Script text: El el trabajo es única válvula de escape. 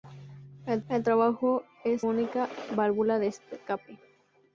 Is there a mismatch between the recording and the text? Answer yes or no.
no